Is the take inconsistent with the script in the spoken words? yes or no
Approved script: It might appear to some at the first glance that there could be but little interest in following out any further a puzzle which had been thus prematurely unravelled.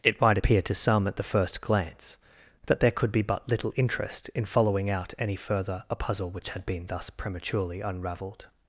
no